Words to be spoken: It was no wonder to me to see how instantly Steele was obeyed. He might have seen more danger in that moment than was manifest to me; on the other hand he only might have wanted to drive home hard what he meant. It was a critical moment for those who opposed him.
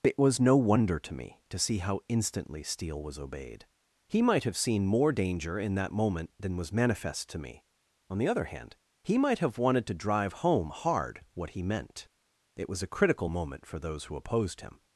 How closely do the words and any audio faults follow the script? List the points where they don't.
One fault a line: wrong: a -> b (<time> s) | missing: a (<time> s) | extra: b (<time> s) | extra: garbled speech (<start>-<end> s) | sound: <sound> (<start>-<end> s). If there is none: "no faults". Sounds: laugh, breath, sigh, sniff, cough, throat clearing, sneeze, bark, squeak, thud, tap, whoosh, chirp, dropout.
missing: only (9.2 s)